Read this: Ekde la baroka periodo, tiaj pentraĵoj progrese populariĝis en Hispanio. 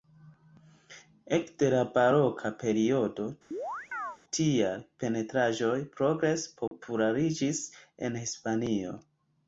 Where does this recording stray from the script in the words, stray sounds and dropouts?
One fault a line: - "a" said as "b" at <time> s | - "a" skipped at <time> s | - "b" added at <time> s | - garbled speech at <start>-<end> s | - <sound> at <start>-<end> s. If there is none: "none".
- chirp at 3.5-4.2 s
- dropout at 6.7-6.7 s